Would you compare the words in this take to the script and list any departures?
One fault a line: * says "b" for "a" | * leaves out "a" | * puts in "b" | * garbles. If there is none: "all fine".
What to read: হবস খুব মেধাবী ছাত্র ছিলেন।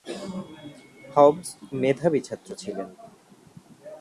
* leaves out "খুব"